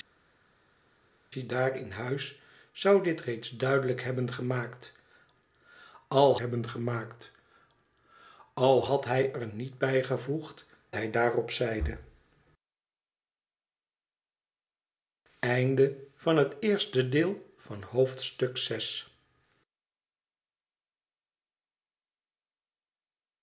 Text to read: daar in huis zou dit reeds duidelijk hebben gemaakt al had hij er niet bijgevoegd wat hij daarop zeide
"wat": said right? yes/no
no